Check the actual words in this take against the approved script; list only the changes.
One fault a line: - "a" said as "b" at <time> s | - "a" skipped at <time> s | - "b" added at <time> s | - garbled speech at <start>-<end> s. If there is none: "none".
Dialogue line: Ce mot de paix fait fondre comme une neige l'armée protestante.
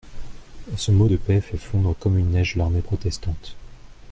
none